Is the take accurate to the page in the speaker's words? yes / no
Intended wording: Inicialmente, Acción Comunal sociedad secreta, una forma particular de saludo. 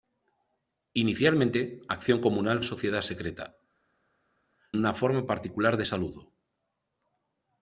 yes